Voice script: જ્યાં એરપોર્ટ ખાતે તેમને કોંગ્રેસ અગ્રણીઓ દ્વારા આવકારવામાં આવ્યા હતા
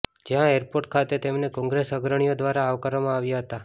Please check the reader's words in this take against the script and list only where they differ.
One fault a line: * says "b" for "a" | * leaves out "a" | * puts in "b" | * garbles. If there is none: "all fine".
all fine